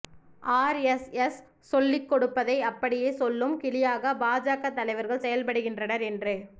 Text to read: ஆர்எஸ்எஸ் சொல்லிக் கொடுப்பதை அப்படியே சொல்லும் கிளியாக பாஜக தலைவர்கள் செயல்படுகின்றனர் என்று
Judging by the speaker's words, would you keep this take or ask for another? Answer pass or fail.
pass